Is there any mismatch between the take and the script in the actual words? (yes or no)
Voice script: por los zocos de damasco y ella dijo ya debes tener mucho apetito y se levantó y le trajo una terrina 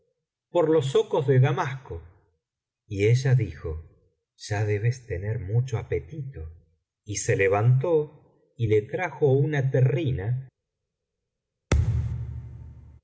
no